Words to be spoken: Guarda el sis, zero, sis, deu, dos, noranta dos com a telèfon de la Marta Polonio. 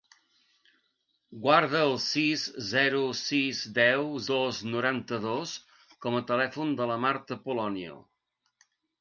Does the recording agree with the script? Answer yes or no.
yes